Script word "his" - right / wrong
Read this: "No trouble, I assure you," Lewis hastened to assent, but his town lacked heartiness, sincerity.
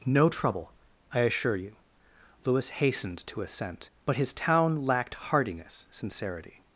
right